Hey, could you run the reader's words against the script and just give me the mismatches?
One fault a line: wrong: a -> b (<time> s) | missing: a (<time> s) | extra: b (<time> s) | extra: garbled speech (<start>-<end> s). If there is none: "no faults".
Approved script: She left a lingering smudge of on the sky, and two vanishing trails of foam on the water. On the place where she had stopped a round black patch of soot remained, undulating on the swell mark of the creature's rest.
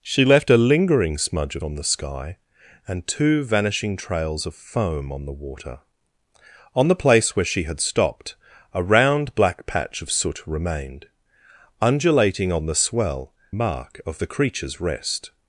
no faults